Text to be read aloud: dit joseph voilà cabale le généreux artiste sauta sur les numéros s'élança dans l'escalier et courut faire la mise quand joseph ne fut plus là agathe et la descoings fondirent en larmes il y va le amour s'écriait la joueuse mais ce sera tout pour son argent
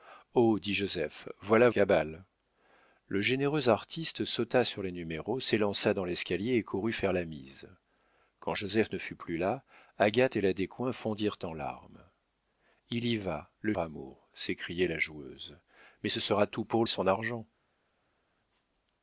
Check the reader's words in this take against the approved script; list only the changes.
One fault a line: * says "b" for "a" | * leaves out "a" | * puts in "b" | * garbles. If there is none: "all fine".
all fine